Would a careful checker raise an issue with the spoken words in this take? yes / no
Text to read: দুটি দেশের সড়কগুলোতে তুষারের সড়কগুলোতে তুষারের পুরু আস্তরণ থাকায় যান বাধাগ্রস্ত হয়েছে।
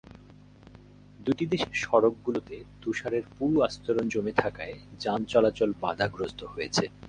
yes